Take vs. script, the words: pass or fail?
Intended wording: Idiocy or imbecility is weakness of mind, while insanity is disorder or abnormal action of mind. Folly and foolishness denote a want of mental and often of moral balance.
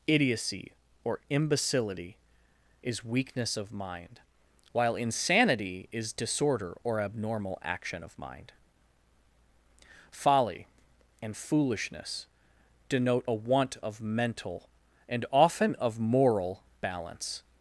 pass